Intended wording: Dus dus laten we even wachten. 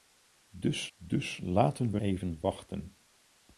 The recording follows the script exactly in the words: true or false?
true